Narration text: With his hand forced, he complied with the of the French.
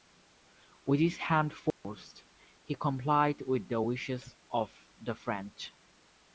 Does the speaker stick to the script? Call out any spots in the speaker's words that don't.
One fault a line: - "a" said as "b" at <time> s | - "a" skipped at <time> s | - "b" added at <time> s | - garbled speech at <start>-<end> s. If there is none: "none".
- "wishes" added at 3.8 s